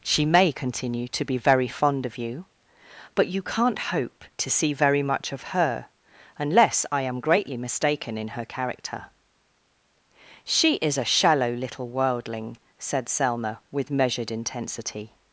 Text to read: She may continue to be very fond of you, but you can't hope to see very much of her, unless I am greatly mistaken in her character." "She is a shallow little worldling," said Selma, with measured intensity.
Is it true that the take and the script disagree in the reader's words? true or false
false